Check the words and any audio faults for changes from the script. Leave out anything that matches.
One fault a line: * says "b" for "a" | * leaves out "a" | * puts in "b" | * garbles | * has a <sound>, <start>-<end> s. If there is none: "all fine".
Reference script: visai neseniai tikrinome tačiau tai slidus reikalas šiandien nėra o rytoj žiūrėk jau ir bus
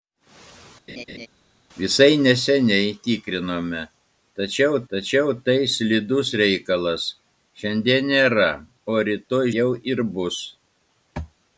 * has a laugh, 0.9-1.3 s
* puts in "tačiau"
* leaves out "žiūrėk"